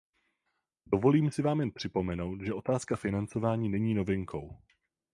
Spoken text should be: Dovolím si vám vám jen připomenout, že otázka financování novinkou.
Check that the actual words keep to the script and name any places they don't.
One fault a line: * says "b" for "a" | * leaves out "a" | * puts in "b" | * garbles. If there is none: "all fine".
* leaves out "vám"
* puts in "není"